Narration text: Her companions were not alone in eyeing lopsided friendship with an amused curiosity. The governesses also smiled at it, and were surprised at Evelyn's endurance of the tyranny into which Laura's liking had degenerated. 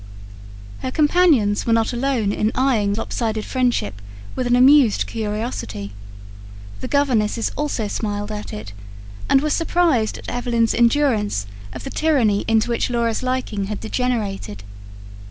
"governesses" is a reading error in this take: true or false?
false